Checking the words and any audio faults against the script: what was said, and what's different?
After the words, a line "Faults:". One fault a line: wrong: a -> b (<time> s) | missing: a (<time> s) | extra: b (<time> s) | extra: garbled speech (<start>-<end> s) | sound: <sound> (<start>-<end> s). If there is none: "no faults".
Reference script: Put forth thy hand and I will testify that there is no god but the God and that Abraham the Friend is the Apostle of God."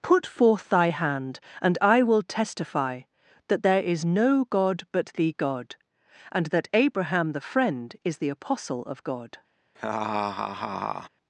Put forth thy hand and I will testify that there is no god but the God and that Abraham the Friend is the Apostle of God."
Faults:
sound: laugh (9.8-11.1 s)